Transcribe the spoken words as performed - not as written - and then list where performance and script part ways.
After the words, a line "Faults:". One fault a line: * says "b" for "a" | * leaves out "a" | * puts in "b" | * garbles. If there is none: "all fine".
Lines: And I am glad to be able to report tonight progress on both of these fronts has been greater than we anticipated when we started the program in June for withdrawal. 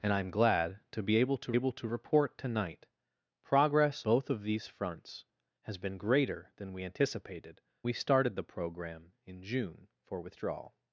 And I am glad to be able to able to report tonight progress both of these fronts has been greater than we anticipated we started the program in June for withdrawal.
Faults:
* puts in "able to"
* leaves out "on"
* leaves out "when"